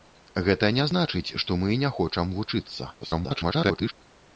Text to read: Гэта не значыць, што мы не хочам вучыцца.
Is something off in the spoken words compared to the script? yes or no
yes